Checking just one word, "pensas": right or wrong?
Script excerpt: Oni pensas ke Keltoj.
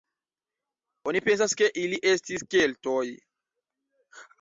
right